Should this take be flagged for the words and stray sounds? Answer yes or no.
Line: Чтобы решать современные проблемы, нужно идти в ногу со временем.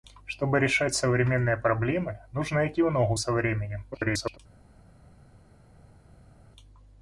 yes